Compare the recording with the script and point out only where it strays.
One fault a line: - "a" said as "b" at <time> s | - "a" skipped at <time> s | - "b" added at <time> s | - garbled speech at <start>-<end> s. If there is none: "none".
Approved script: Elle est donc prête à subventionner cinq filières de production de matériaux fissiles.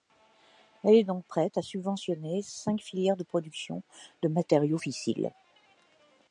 none